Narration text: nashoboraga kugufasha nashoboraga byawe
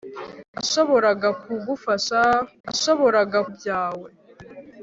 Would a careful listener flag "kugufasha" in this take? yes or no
no